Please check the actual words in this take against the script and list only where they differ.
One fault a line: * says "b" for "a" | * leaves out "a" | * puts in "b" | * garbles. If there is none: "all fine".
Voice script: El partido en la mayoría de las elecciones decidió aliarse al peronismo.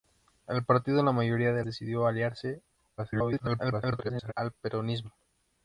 * leaves out "las elecciones"
* garbles